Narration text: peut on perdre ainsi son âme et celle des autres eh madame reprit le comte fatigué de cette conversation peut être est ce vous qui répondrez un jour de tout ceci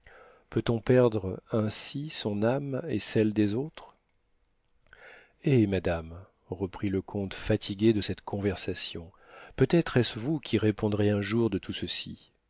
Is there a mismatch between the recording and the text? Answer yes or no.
no